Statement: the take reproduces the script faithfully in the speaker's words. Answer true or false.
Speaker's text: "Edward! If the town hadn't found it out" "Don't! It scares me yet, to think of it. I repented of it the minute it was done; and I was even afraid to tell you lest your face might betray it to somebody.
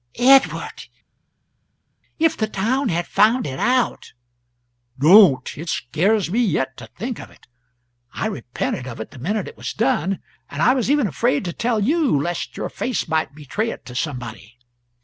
false